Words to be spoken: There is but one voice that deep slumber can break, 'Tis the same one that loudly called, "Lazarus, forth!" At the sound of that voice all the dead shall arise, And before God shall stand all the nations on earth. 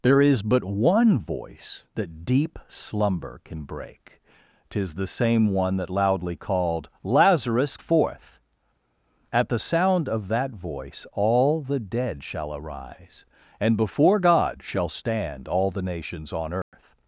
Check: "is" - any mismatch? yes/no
no